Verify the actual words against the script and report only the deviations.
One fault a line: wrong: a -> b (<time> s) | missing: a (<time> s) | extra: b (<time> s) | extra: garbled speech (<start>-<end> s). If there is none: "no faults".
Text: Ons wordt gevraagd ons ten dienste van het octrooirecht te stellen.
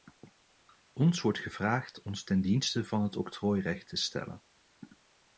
no faults